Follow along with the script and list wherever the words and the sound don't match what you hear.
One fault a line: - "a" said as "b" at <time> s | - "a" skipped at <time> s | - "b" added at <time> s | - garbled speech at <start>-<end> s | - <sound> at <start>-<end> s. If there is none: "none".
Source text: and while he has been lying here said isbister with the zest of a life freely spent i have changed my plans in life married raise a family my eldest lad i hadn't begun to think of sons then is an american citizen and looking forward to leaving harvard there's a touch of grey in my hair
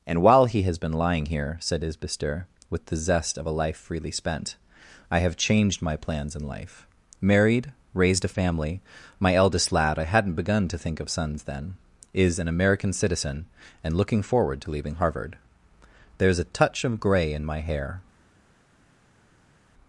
- "raise" said as "raised" at 7.9 s